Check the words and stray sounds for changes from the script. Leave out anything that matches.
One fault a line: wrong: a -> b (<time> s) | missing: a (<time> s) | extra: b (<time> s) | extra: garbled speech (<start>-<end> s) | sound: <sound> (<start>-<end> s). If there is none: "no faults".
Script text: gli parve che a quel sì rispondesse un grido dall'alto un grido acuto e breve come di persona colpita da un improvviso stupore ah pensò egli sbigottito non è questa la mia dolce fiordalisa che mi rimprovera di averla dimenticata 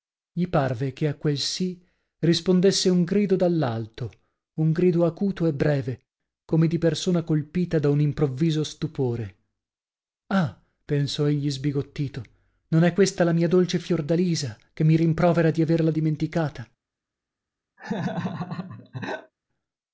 sound: laugh (17.8-19.3 s)